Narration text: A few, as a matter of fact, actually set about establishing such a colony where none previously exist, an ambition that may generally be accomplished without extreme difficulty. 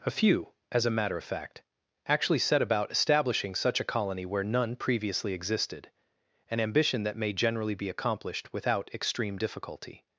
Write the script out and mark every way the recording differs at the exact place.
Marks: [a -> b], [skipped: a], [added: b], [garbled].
A few, as a matter of fact, actually set about establishing such a colony where none previously [exist, -> existed] an ambition that may generally be accomplished without extreme difficulty.